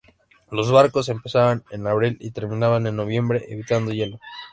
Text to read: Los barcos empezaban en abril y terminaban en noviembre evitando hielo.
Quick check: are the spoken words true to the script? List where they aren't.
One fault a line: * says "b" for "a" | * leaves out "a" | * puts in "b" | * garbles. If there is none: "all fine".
all fine